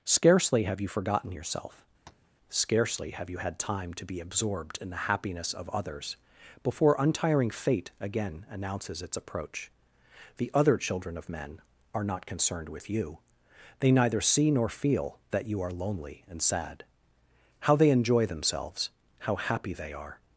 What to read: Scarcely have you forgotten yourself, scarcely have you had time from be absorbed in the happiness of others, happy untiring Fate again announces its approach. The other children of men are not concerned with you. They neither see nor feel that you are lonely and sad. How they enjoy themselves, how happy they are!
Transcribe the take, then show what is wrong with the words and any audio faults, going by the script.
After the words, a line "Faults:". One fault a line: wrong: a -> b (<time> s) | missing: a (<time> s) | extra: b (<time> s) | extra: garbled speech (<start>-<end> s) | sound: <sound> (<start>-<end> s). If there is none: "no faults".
Scarcely have you forgotten yourself, scarcely have you had time to be absorbed in the happiness of others, before untiring Fate again announces its approach. The other children of men are not concerned with you. They neither see nor feel that you are lonely and sad. How they enjoy themselves, how happy they are!
Faults:
sound: tap (2.1-2.3 s)
wrong: from -> to (3.9 s)
wrong: happy -> before (6.6 s)